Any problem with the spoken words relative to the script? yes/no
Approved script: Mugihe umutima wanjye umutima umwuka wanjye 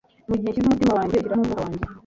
yes